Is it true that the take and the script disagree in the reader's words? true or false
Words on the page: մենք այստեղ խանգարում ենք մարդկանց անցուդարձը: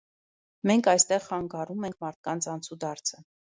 false